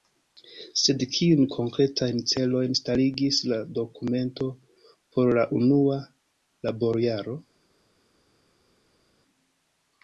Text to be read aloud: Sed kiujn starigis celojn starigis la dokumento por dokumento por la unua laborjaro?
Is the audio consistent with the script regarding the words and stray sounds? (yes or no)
no